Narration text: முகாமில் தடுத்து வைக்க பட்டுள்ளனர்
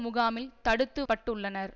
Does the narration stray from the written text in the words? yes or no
yes